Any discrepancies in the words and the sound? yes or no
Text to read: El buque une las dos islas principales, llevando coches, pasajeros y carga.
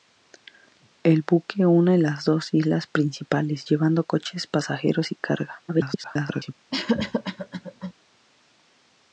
yes